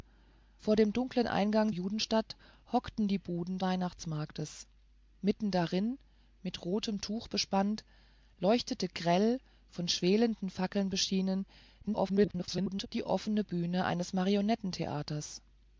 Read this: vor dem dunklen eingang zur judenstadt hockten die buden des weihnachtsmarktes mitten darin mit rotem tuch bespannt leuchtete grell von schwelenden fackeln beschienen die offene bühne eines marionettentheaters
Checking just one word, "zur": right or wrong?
wrong